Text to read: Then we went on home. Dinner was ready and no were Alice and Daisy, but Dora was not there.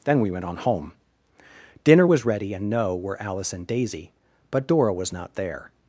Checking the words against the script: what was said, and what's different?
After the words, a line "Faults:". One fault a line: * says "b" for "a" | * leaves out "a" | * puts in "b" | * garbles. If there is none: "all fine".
Then we went on home. Dinner was ready and no were Alice and Daisy, but Dora was not there.
Faults:
all fine